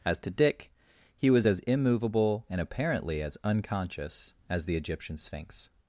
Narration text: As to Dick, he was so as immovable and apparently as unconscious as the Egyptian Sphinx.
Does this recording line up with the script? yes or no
no